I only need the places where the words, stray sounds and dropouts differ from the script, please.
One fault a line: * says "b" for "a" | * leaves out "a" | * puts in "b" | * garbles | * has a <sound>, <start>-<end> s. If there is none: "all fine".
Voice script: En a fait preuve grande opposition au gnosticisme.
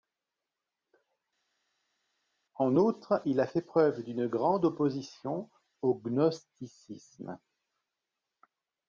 * puts in "outre il"
* puts in "d'une"